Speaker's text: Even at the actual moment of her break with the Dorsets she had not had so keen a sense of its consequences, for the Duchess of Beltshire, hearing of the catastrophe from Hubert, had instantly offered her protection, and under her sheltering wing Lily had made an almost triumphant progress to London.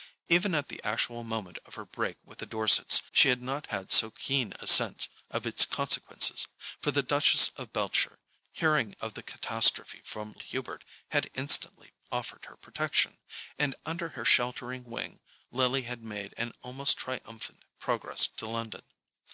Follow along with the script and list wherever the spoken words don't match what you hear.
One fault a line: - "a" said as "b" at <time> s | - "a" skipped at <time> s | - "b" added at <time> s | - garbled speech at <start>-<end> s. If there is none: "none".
none